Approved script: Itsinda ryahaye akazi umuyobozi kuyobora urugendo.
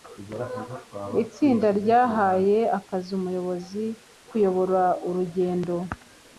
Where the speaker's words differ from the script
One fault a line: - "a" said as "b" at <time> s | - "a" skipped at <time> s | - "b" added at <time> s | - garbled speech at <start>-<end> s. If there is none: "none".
none